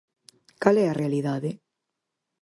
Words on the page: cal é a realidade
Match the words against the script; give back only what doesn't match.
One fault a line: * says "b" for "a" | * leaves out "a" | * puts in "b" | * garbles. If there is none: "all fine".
all fine